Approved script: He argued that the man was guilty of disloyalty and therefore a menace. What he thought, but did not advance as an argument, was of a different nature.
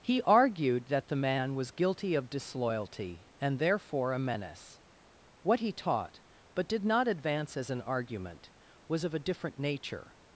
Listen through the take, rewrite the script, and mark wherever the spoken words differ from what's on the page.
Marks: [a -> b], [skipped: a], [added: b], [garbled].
He argued that the man was guilty of disloyalty and therefore a menace. What he [thought, -> taught] but did not advance as an argument, was of a different nature.